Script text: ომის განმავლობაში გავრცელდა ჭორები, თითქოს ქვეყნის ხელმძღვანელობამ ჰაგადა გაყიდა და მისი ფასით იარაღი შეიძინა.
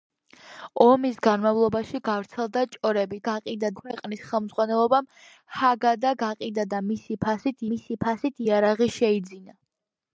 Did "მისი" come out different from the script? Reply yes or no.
no